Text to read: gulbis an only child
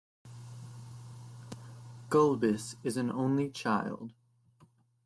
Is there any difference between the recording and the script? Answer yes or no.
yes